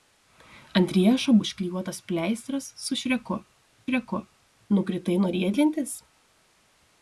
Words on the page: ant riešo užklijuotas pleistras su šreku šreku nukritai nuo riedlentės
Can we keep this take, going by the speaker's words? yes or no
yes